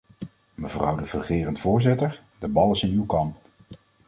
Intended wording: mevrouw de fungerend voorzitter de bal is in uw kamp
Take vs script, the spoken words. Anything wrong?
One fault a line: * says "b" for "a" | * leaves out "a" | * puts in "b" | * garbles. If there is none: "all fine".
all fine